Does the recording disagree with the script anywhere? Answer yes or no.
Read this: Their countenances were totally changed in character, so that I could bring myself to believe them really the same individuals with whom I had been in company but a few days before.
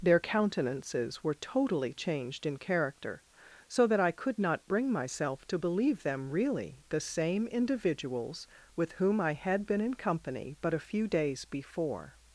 yes